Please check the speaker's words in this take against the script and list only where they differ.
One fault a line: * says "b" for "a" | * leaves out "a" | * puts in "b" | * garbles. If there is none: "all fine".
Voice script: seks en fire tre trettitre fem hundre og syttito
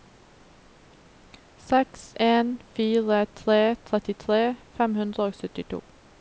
all fine